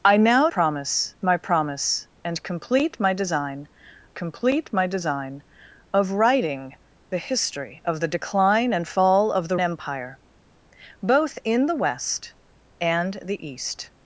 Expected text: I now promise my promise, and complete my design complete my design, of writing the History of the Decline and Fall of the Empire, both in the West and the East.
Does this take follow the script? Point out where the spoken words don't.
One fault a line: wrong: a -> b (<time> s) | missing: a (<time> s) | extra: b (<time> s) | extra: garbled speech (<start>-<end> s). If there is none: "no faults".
no faults